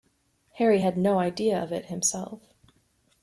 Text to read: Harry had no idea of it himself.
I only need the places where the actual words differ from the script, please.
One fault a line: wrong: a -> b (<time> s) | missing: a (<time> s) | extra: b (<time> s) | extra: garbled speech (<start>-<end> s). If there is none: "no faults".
no faults